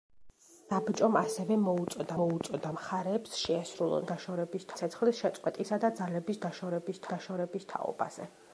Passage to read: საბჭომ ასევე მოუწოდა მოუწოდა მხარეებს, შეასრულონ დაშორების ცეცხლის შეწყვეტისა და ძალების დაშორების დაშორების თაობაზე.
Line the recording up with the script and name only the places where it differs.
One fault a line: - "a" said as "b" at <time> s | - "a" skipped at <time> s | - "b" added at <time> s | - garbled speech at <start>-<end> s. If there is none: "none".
none